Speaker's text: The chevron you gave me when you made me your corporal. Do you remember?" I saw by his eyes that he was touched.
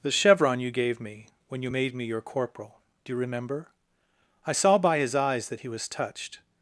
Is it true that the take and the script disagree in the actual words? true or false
false